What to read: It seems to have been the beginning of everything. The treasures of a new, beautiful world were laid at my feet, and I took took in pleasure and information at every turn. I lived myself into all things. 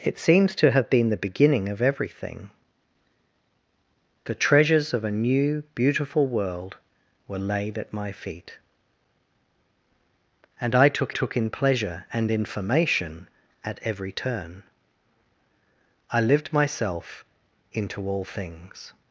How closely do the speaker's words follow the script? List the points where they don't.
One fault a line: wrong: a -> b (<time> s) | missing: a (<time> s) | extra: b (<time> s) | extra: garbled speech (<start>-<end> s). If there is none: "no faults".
no faults